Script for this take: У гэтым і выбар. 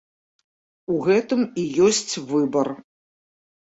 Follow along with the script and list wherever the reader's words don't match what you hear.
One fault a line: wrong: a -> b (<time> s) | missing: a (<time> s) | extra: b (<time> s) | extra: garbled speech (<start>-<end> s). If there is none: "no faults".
extra: ёсць (1.9 s)